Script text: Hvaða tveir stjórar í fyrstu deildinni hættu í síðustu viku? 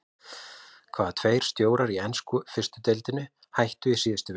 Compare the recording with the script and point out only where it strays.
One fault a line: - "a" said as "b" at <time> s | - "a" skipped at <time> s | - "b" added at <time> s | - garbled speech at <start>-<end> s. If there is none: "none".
- "ensku" added at 2.1 s